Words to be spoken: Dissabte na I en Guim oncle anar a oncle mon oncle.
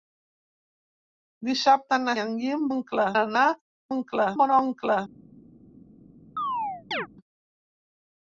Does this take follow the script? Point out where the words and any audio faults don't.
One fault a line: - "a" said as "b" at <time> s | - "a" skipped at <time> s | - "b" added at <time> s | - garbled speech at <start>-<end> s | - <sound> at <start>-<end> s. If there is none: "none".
- chirp at 6.4-7.1 s